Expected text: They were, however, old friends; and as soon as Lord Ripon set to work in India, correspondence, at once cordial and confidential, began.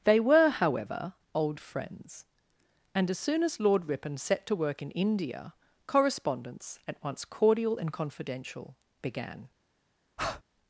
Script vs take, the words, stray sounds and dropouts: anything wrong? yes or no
yes